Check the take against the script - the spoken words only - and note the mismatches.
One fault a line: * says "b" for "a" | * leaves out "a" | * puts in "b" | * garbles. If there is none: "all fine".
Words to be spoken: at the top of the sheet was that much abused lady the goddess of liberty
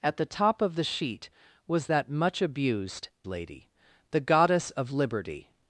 all fine